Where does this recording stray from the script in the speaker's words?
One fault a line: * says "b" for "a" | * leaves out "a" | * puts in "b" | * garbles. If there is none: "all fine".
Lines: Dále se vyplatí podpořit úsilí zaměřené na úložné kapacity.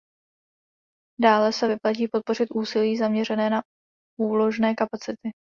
all fine